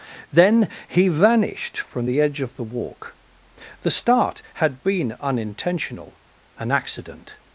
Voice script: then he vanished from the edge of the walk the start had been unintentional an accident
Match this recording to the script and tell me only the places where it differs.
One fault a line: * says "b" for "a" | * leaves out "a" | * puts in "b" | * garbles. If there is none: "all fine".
all fine